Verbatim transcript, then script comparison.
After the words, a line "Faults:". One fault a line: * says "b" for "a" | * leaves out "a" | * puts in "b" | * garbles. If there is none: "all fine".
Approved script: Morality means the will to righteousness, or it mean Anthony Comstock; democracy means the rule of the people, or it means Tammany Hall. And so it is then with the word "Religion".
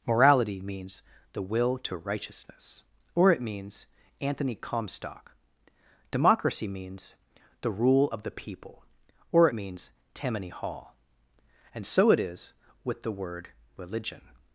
Morality means the will to righteousness, or it means Anthony Comstock; democracy means the rule of the people, or it means Tammany Hall. And so it is with the word "Religion".
Faults:
* says "means" for "mean"
* leaves out "then"